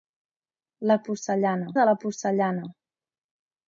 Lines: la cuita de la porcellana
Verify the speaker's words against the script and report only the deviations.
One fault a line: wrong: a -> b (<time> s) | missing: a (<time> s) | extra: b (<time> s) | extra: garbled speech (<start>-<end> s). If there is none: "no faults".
wrong: cuita -> porcellana (1.1 s)